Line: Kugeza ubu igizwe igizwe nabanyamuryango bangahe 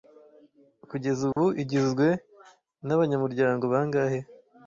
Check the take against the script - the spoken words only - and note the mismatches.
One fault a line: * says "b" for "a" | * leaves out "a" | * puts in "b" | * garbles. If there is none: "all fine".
* leaves out "igizwe"